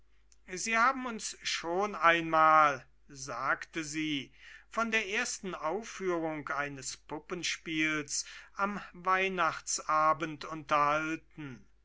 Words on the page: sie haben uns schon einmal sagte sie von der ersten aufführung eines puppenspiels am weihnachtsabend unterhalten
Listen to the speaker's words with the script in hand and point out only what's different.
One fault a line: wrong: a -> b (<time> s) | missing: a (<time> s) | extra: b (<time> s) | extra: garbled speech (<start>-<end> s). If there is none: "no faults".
no faults